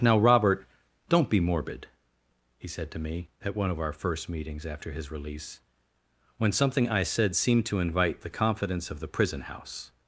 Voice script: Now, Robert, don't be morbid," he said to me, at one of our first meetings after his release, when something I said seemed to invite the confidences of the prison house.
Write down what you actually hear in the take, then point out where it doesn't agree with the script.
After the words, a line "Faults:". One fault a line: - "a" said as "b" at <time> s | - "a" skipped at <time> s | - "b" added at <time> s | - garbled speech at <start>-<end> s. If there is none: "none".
Now, Robert, don't be morbid," he said to me, at one of our first meetings after his release, when something I said seemed to invite the confidence of the prison house.
Faults:
- "confidences" said as "confidence" at 8.3 s